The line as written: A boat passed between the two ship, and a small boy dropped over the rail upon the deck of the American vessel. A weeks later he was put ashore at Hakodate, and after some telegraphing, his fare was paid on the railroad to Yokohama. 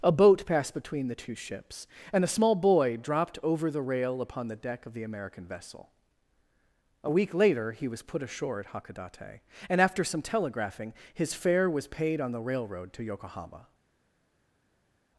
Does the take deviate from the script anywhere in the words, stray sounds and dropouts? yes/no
yes